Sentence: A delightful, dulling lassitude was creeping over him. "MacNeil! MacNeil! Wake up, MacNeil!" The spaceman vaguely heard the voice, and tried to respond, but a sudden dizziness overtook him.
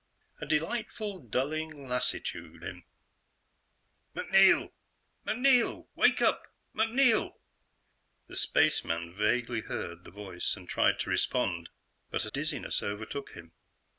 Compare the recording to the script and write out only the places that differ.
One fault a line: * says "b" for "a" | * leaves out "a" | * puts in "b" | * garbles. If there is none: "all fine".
* leaves out "was creeping over"
* leaves out "sudden"